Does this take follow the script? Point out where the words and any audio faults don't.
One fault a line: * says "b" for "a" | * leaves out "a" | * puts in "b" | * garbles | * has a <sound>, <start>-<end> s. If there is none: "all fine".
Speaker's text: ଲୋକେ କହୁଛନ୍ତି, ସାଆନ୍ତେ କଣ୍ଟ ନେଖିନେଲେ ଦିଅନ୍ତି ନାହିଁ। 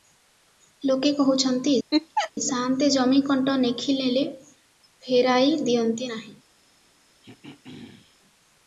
* has a laugh, 1.9-2.3 s
* puts in "ଜମି"
* puts in "ଫେରାଇ"
* has a throat clearing, 7.2-8.2 s